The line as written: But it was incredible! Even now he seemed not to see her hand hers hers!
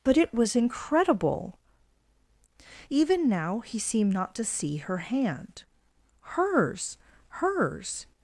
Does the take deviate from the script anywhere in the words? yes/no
no